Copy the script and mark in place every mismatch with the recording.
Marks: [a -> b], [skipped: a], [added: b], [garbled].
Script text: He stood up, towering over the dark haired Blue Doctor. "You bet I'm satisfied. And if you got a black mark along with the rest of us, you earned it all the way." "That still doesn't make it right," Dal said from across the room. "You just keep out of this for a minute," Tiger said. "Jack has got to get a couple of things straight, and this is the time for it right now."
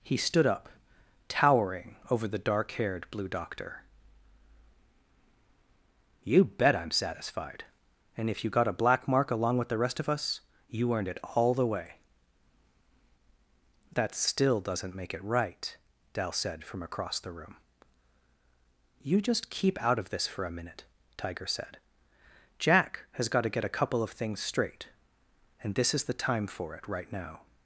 He stood up, towering over the dark haired Blue Doctor. "You bet I'm satisfied. And if you got a black mark along with the rest of us, you earned it all the way." "That still doesn't make it right," Dal said from across the room. "You just keep out of this for a minute," Tiger said. "Jack has got to get a couple of things straight, and this is the time for it right now."